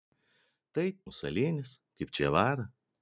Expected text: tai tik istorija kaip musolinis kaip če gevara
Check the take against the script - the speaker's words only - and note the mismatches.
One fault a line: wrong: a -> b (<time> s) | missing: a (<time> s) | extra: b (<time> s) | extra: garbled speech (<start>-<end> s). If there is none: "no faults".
missing: tik istorija kaip (0.8 s)
missing: če (2.2 s)